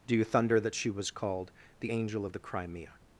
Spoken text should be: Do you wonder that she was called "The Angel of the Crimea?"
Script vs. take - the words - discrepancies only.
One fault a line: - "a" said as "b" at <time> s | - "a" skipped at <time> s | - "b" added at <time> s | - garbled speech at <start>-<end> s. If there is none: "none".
- "wonder" said as "thunder" at 0.2 s